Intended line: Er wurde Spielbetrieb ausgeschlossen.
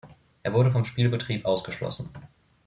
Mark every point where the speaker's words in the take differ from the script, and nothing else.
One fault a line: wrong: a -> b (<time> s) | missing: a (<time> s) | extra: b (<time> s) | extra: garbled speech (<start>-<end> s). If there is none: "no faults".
extra: vom (0.7 s)